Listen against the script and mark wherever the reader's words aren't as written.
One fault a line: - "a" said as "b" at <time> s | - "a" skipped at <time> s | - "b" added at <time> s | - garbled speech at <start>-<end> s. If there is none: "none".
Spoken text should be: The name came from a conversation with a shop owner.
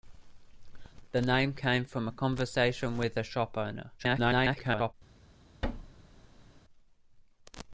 - garbled speech at 4.0-4.9 s